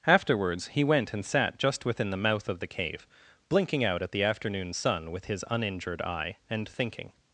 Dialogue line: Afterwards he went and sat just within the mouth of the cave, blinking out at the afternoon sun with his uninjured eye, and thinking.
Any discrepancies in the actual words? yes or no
no